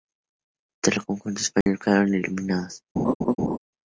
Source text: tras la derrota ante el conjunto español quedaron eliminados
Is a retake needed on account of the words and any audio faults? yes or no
yes